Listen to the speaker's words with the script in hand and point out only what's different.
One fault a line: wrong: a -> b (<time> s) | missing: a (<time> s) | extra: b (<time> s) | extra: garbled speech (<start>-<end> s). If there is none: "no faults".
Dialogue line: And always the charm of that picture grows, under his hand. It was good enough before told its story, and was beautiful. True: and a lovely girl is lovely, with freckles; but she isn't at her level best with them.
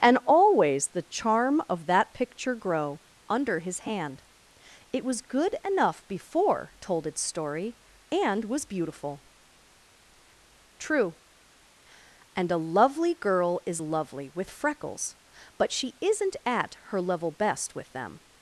wrong: grows -> grow (2.5 s)